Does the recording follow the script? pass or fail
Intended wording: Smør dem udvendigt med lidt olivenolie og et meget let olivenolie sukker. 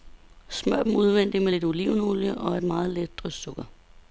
fail